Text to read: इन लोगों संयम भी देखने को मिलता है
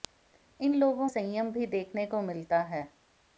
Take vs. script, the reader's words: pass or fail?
pass